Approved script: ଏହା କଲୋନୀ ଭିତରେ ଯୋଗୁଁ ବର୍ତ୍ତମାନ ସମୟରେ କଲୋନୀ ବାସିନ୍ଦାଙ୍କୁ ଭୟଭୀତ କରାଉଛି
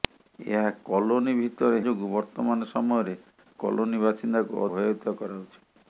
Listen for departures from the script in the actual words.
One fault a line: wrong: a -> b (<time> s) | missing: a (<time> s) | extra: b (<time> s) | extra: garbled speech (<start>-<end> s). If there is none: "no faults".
no faults